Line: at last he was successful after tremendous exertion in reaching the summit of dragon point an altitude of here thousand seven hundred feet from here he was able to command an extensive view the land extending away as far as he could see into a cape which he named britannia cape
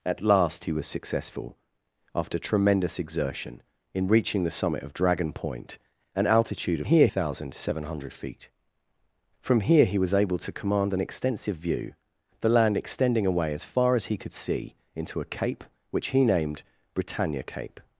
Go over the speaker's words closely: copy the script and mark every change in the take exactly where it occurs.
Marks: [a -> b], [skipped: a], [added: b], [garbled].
at last he was successful after tremendous exertion in reaching the summit of dragon point an altitude of here thousand seven hundred feet from here he was able to command an extensive view the land extending away as far as he could see into a cape which he named britannia cape